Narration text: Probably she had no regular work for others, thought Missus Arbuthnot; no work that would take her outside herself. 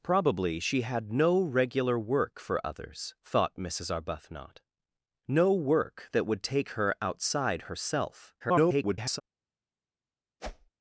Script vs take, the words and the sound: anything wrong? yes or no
yes